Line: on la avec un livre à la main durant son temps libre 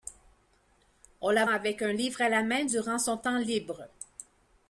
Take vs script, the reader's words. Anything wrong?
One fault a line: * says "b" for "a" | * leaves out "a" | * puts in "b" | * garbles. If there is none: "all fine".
all fine